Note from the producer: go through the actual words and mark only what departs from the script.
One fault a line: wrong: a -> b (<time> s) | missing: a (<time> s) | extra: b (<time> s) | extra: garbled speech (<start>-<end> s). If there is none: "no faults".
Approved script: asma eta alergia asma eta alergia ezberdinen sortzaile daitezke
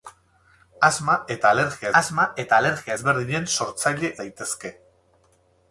no faults